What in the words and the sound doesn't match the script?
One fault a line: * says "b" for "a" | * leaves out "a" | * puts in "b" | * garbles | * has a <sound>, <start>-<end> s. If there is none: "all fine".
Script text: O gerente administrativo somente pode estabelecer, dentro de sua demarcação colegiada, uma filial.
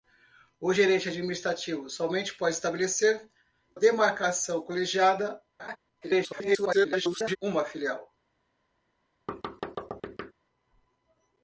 * leaves out "dentro de sua"
* has a laugh, 5.6-5.8 s
* garbles
* has a thud, 9.3-10.3 s